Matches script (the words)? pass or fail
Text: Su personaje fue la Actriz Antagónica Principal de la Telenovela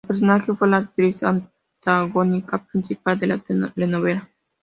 pass